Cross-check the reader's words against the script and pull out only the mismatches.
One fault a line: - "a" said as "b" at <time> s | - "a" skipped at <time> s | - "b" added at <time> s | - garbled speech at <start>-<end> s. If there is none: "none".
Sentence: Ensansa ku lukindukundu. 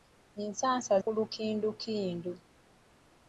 none